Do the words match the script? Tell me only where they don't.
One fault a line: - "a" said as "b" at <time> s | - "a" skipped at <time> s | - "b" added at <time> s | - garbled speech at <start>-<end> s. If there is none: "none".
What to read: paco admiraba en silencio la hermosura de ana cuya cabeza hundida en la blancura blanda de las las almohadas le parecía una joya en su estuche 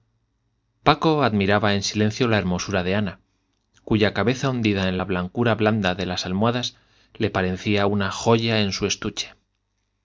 - "las" skipped at 6.3 s